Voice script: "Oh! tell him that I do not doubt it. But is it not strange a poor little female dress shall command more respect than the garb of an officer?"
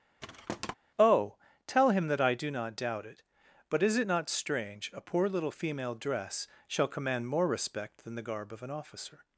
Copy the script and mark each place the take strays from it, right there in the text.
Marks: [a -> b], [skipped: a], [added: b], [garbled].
"Oh! tell him that I do not doubt it. But is it not strange a poor little female dress shall command more respect than the garb of an officer?"